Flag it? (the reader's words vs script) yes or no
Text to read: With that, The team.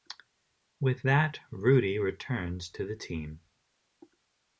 yes